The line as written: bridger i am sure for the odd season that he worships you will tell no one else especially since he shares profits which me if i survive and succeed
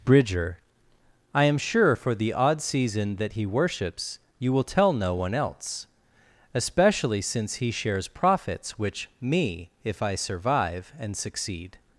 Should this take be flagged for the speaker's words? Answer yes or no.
no